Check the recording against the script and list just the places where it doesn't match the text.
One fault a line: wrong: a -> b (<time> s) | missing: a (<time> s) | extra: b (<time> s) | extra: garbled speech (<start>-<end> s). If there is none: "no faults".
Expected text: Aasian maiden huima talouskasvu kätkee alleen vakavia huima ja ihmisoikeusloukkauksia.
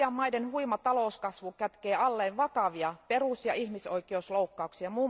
wrong: huima -> perus (3.1 s)